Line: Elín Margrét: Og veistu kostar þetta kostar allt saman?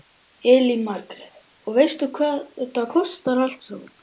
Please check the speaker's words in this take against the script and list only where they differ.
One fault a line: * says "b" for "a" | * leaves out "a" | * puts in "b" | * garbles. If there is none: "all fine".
* says "hvað" for "kostar"